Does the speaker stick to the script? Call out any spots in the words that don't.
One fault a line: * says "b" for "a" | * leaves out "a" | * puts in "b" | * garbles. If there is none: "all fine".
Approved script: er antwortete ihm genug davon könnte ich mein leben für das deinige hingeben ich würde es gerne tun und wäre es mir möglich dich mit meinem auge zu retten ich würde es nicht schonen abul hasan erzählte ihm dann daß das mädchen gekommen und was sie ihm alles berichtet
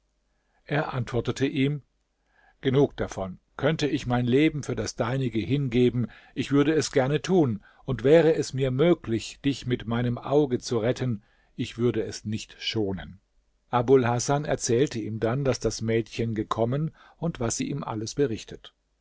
all fine